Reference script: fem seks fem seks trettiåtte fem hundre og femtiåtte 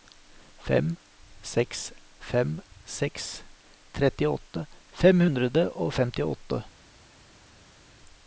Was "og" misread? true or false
false